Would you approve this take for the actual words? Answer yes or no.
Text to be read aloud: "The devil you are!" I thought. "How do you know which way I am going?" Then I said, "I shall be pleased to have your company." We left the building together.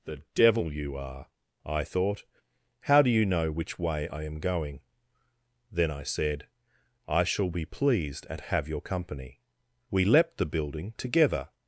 no